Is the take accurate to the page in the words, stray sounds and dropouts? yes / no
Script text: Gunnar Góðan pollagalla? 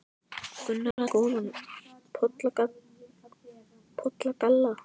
no